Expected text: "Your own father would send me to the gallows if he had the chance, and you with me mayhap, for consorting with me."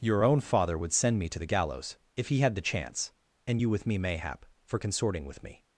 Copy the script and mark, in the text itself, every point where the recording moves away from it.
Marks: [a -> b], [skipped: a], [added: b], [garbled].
"Your own father would send me to the gallows if he had the chance, and you with me mayhap, for consorting with me."